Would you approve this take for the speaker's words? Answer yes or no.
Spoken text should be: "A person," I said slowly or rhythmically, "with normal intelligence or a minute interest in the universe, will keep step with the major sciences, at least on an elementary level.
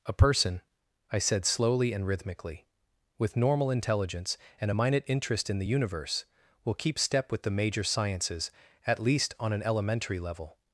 no